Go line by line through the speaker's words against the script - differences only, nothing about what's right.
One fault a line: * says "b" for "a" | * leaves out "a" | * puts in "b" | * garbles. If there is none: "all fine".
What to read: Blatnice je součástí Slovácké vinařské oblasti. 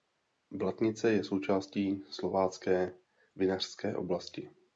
all fine